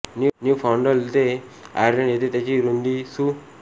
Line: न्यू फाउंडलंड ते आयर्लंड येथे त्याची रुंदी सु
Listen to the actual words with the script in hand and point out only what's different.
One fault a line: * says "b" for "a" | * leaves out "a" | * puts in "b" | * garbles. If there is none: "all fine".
all fine